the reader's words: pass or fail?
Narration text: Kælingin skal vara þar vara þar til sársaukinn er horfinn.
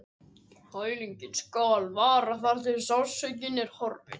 fail